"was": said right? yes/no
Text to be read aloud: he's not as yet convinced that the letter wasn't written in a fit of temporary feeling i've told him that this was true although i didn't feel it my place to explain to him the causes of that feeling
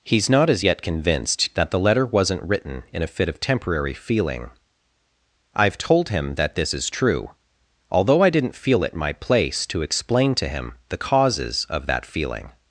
no